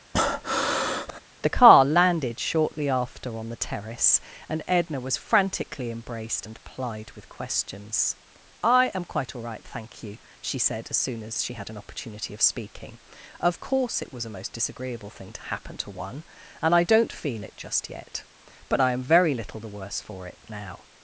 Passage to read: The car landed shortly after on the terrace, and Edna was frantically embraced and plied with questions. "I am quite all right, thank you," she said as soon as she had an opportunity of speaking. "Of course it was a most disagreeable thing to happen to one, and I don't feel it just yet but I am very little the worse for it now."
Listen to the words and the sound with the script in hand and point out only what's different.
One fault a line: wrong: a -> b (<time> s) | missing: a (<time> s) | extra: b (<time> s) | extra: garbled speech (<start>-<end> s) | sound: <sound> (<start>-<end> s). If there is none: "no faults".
sound: breath (0.1-1.2 s)